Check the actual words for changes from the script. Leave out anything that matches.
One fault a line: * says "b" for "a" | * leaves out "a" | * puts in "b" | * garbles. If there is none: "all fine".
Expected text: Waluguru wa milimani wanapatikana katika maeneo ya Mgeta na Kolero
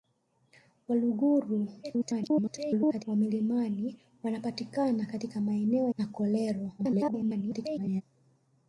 * garbles
* leaves out "ya Mgeta"
* garbles